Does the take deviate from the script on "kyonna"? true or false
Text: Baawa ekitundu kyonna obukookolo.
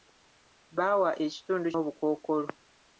true